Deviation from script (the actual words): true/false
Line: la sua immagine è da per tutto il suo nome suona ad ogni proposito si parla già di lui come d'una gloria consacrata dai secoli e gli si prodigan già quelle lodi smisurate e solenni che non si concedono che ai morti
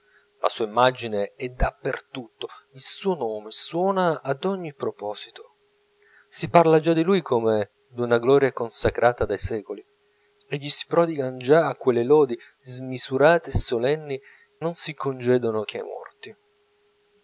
true